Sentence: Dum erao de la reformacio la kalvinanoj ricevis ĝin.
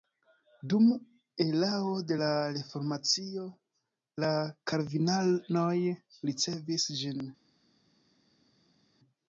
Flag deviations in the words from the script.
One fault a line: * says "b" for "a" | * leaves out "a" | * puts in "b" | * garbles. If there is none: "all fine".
all fine